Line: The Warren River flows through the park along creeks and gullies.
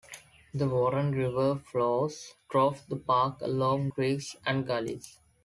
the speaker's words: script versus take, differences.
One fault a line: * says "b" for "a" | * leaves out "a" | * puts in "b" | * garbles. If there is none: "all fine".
all fine